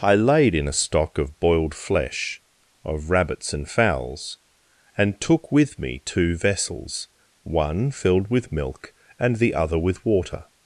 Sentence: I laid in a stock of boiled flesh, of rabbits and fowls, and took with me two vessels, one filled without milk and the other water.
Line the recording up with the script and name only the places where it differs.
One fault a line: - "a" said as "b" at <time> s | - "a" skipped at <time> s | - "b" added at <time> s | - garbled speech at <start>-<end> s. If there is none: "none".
- "without" said as "with" at 8.3 s
- "with" added at 9.8 s